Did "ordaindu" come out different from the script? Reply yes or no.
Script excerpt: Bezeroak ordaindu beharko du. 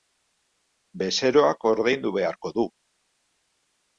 no